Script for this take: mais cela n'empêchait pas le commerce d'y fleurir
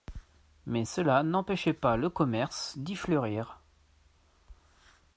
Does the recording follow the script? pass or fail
pass